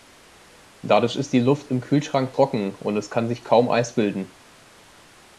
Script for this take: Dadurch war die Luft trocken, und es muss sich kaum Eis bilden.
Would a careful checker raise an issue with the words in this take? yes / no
yes